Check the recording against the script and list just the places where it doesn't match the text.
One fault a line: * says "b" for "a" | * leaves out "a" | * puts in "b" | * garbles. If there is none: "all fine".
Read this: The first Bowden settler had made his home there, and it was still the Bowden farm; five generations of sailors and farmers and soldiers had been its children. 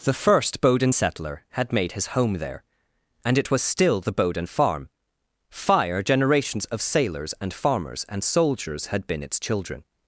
* says "fire" for "five"